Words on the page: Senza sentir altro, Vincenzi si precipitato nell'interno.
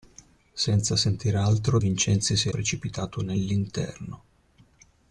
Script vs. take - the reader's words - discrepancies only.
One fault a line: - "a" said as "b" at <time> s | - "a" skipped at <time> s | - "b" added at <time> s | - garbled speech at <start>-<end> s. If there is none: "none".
none